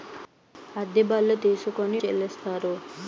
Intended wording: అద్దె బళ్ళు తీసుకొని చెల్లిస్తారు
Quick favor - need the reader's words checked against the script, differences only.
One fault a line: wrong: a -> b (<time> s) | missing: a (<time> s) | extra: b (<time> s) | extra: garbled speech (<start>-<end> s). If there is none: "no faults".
no faults